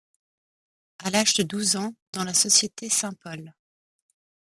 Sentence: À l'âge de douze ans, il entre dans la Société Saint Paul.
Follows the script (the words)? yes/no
no